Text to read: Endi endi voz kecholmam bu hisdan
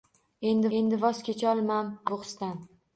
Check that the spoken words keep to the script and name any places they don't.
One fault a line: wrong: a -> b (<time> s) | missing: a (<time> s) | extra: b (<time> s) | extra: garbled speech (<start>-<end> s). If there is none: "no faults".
no faults